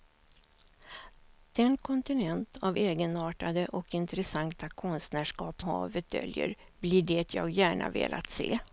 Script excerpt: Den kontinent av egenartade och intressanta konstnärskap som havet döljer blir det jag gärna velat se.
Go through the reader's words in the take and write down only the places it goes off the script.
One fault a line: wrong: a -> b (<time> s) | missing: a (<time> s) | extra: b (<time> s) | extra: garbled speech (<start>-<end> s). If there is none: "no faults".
missing: som (5.6 s)